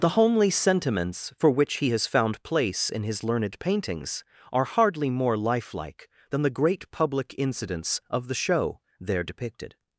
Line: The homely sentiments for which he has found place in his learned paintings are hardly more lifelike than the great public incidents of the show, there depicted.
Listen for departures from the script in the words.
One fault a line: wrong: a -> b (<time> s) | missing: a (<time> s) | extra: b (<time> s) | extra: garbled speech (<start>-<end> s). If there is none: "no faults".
no faults